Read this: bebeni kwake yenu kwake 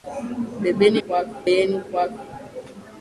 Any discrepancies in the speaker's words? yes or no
no